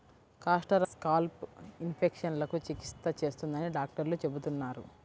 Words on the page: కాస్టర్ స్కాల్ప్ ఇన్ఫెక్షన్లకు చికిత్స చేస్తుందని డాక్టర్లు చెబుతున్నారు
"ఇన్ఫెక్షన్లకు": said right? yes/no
yes